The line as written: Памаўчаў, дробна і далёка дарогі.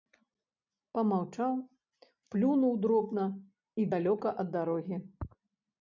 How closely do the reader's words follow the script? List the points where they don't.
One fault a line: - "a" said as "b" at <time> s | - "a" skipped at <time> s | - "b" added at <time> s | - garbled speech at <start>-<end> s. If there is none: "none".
- "плюнуў" added at 2.3 s
- "ад" added at 4.5 s